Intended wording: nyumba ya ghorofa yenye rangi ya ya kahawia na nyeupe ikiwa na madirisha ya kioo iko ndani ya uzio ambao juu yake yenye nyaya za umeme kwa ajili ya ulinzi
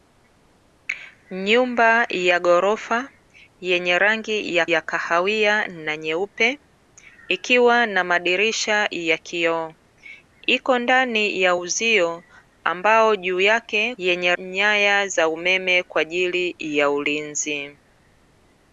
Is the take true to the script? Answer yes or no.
yes